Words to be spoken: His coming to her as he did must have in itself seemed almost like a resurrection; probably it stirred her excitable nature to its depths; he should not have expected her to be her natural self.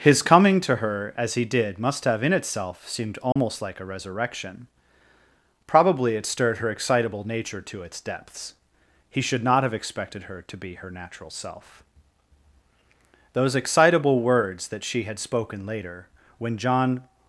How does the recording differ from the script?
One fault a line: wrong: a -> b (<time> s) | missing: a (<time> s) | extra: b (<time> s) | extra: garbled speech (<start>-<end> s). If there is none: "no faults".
extra: Those excitable words that she had spoken later when John (13.3 s)